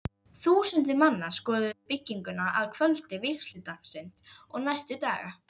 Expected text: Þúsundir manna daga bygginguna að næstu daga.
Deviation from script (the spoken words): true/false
true